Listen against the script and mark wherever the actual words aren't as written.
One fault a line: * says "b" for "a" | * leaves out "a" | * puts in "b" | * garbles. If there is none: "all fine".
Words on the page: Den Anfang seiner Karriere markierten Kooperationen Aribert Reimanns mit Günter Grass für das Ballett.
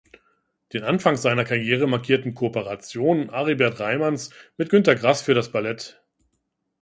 all fine